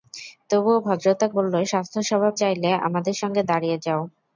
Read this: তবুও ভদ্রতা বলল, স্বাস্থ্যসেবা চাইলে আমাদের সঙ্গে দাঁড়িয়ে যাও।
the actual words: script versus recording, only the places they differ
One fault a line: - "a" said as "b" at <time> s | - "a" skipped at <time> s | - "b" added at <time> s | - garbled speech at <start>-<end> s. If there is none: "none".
none